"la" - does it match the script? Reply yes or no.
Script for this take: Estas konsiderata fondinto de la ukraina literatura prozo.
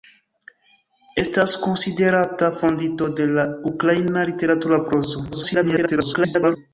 yes